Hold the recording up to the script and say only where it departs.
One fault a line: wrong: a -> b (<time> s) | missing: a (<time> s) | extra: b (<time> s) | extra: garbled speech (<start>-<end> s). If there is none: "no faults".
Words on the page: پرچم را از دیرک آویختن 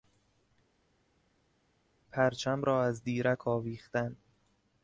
no faults